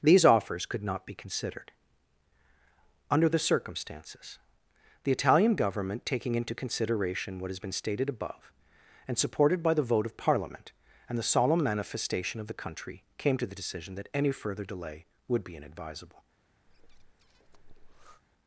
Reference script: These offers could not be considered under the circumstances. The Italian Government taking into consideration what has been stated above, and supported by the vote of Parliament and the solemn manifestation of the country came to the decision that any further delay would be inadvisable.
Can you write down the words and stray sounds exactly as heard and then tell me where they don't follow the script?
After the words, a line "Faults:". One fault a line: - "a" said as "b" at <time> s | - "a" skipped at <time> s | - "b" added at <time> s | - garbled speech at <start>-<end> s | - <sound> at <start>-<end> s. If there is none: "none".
These offers could not be considered under the circumstances. The Italian Government taking into consideration what has been stated above, and supported by the vote of Parliament and the solemn manifestation of the country came to the decision that any further delay would be inadvisable.
Faults:
- breath at 16.7-18.2 s